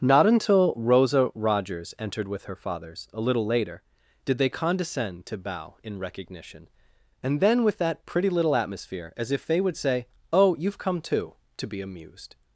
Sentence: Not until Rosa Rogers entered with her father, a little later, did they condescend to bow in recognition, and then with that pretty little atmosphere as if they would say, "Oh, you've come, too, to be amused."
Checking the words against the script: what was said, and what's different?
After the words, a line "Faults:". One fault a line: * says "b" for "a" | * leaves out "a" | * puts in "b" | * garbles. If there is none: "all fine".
Not until Rosa Rogers entered with her fathers, a little later, did they condescend to bow in recognition, and then with that pretty little atmosphere as if they would say, "Oh, you've come, too, to be amused."
Faults:
* says "fathers" for "father"